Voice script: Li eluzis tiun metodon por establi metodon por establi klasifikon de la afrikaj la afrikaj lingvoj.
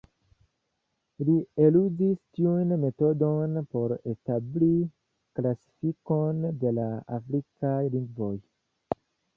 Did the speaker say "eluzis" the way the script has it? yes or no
yes